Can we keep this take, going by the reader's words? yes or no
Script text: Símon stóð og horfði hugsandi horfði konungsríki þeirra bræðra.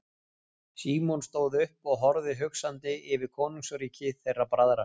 no